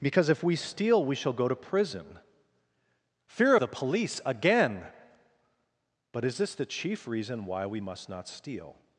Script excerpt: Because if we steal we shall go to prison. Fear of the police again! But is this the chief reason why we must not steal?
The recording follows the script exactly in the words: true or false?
false